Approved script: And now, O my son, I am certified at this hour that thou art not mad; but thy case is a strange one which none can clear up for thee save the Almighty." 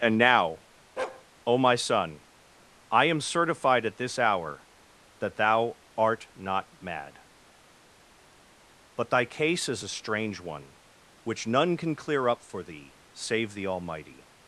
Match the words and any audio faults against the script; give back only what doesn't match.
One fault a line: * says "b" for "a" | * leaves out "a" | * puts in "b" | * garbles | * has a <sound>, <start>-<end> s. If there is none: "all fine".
* has a bark, 1.0-1.3 s